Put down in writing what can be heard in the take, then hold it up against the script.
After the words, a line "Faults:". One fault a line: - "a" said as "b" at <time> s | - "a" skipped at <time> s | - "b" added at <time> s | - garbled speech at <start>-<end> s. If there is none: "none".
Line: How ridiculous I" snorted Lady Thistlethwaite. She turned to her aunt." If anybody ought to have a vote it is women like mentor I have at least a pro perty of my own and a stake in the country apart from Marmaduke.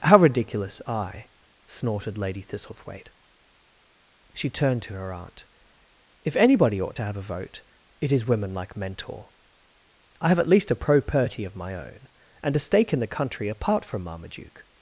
How ridiculous I" snorted Lady Thistlethwaite. She turned to her aunt." If anybody ought to have a vote it is women like mentor I have at least a pro perty of my own and a stake in the country apart from Marmaduke.
Faults:
none